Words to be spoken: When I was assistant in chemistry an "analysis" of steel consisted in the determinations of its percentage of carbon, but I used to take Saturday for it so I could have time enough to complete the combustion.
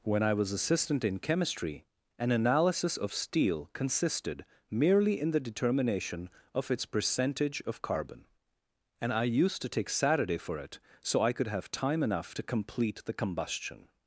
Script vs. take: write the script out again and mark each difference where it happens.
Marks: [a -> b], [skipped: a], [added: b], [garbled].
When I was assistant in chemistry an "analysis" of steel consisted [added: merely] in the [determinations -> determination] of its percentage of carbon, [but -> and] I used to take Saturday for it so I could have time enough to complete the combustion.